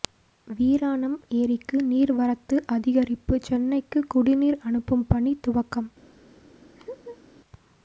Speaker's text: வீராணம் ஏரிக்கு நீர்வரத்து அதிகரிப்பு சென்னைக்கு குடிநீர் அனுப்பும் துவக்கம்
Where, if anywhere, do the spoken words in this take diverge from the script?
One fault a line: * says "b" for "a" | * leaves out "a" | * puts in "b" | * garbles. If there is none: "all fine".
* puts in "பணி"